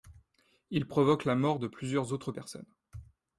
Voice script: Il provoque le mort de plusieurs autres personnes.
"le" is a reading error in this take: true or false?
true